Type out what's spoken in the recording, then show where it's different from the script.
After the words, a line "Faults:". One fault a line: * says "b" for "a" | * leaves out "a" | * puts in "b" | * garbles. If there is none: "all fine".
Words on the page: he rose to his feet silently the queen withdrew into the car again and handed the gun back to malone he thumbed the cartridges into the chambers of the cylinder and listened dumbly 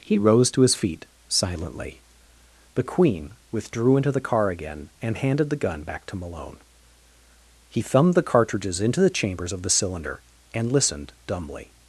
he rose to his feet silently the queen withdrew into the car again and handed the gun back to malone he thumbed the cartridges into the chambers of the cylinder and listened dumbly
Faults:
all fine